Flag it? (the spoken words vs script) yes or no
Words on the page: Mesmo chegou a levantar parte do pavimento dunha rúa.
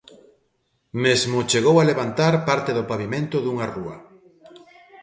no